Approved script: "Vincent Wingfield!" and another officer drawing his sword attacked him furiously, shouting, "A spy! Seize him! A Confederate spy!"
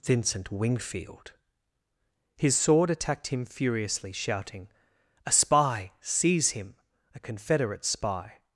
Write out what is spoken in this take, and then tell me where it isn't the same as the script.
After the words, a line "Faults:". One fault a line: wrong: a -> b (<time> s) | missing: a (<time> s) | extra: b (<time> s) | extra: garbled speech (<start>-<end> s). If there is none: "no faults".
"Vincent Wingfield!" his sword attacked him furiously, shouting, "A spy! Seize him! A Confederate spy!"
Faults:
missing: and another officer drawing (1.3 s)